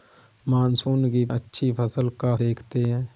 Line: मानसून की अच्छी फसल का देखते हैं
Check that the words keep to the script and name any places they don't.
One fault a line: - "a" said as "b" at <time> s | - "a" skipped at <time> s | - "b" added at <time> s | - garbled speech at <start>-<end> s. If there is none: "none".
none